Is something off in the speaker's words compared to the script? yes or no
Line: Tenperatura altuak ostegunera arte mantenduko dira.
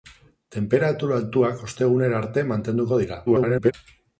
yes